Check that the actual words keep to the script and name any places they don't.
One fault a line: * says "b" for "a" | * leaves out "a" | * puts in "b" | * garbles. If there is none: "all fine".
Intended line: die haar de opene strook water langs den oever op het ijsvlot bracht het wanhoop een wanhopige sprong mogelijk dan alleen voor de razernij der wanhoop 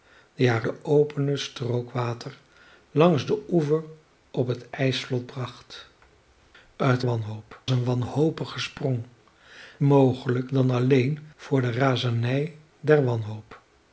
all fine